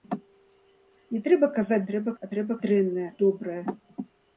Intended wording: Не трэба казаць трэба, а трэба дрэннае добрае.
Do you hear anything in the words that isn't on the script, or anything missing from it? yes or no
no